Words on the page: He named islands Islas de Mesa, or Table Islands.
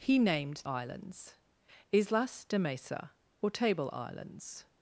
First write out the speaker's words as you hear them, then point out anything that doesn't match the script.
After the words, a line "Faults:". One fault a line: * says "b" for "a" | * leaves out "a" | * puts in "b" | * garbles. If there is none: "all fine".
He named islands Islas de Mesa, or Table Islands.
Faults:
all fine